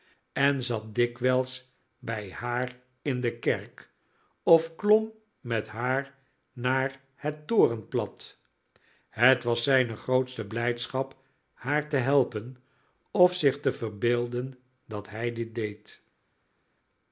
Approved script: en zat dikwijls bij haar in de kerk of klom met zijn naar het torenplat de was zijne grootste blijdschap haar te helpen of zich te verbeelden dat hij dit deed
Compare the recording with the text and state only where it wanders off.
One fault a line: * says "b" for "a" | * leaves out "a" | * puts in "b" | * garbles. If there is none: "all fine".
* says "haar" for "zijn"
* says "het" for "de"